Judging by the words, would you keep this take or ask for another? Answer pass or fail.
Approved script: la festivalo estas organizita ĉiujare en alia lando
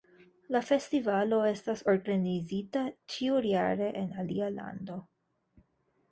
pass